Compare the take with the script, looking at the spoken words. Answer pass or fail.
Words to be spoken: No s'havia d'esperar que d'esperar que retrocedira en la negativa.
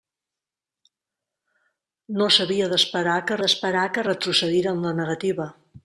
pass